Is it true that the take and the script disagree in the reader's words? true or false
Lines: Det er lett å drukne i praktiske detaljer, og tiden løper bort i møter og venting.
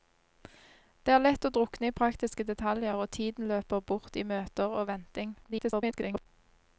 true